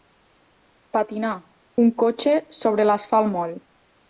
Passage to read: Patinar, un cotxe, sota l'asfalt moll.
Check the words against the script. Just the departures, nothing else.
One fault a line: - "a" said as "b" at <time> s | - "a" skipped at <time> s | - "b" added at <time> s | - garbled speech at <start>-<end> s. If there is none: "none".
- "sota" said as "sobre" at 2.6 s